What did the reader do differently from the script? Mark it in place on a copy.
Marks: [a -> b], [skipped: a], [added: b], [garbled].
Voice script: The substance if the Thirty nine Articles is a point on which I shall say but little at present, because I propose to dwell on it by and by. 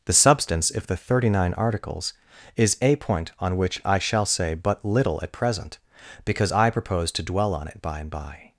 The substance if the Thirty nine Articles is a point on which I shall say but little at present, because I propose to dwell on it by and by.